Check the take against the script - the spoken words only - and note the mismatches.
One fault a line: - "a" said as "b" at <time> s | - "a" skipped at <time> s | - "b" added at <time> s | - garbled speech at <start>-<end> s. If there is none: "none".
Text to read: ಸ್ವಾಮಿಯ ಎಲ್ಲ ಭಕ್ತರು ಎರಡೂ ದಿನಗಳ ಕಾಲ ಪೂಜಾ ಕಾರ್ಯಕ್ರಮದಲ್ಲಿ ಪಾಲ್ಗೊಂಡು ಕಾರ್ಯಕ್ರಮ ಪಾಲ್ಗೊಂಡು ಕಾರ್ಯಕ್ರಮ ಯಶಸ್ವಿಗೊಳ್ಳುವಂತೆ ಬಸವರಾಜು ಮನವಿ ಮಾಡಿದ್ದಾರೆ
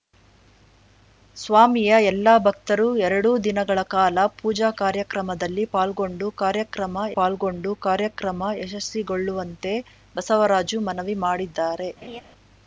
none